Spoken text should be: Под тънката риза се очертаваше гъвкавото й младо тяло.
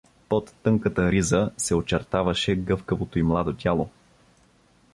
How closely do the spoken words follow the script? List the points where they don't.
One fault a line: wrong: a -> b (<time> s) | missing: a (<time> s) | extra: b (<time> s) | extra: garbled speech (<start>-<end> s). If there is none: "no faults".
no faults